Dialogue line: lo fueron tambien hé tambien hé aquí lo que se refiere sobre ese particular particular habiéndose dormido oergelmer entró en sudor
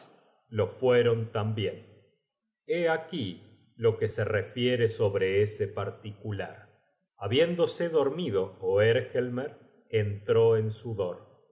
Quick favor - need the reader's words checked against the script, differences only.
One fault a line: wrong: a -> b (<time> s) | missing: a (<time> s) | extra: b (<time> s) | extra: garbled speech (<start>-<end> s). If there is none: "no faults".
missing: tambien hé (2.9 s)
missing: particular (6.7 s)